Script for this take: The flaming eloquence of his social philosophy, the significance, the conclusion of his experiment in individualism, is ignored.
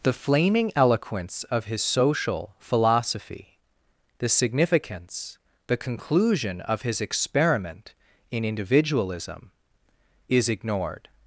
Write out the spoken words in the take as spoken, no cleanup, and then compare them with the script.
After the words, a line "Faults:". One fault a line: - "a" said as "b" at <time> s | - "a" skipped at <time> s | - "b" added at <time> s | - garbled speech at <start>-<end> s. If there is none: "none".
The flaming eloquence of his social philosophy, the significance, the conclusion of his experiment in individualism, is ignored.
Faults:
none